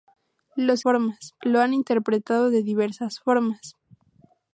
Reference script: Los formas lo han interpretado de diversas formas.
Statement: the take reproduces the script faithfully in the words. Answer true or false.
true